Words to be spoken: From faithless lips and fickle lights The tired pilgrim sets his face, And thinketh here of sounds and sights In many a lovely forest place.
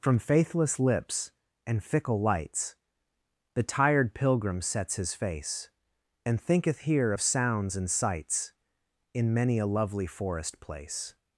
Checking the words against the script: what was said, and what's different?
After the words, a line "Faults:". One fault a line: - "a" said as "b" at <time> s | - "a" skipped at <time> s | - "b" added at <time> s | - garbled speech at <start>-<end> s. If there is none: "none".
From faithless lips and fickle lights The tired pilgrim sets his face, And thinketh here of sounds and sights In many a lovely forest place.
Faults:
none